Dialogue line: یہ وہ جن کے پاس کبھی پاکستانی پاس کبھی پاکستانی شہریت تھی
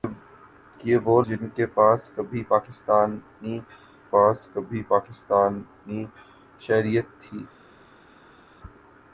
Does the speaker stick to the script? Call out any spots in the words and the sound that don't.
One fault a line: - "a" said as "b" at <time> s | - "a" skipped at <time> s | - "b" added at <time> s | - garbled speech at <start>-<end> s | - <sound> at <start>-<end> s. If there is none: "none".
none